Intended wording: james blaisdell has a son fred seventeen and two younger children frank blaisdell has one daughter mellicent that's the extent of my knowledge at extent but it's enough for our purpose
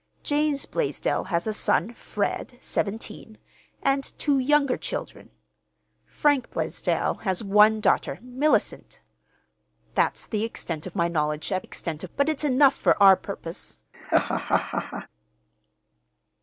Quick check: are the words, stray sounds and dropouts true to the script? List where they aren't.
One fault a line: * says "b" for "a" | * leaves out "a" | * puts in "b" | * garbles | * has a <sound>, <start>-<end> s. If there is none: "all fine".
* has a laugh, 13.9-15.1 s